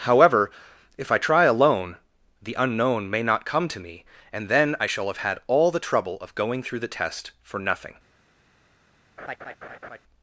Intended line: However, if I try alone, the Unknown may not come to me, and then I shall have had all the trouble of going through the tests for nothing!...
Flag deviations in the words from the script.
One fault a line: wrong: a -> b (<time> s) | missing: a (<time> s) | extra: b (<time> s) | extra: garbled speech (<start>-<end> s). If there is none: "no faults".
wrong: tests -> test (6.9 s)